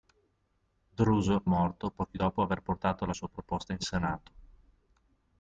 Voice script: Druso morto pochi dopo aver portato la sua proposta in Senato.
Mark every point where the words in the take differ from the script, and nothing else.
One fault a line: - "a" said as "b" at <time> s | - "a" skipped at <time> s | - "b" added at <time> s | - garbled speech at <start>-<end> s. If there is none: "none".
none